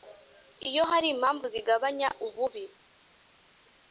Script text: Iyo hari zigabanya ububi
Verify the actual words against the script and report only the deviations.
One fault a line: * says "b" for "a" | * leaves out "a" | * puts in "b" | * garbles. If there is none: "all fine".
* puts in "impamvu"